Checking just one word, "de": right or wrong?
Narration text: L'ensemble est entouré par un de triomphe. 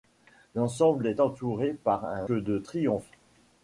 right